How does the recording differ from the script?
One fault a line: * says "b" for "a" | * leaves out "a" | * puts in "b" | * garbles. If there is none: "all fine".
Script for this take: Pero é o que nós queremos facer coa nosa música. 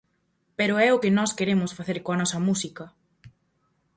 all fine